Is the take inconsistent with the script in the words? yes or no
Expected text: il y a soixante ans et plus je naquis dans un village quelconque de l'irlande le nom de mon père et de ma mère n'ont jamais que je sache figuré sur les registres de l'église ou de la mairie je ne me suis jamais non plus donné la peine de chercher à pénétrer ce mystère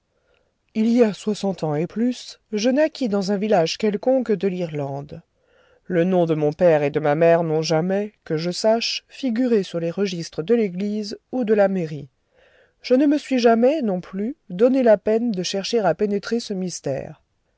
no